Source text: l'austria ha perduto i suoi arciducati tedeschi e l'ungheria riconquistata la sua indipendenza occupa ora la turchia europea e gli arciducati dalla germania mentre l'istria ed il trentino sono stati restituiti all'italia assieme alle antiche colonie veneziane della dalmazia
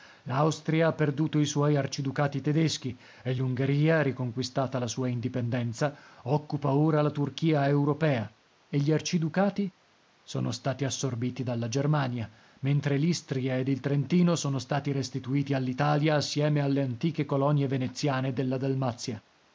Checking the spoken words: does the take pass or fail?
fail